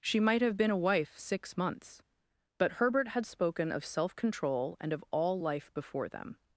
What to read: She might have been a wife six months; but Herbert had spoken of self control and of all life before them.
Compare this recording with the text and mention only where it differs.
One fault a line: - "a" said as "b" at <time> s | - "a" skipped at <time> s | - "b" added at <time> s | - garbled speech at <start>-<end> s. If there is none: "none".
none